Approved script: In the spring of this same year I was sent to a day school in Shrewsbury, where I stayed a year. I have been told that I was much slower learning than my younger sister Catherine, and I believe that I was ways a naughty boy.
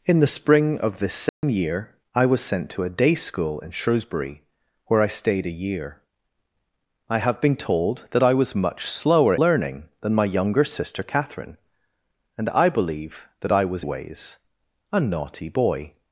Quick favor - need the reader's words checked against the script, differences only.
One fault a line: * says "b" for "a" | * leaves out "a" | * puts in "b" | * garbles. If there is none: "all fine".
all fine